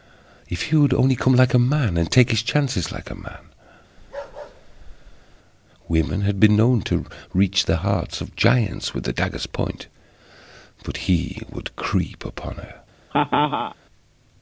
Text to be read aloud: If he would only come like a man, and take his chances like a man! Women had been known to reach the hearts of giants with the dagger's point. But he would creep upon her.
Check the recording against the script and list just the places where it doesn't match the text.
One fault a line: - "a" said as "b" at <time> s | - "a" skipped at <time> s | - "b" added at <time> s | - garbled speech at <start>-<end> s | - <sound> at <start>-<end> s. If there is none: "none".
- bark at 4.0-5.4 s
- laugh at 13.1-13.7 s